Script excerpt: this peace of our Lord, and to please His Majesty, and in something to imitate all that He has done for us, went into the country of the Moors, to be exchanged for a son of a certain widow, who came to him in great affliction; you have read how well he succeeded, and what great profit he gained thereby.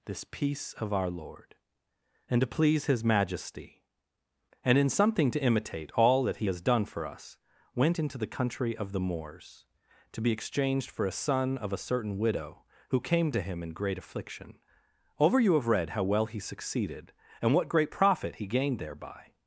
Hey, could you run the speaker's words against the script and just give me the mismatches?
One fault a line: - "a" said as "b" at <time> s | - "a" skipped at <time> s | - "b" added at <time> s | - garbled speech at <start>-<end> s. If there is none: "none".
- "over" added at 15.2 s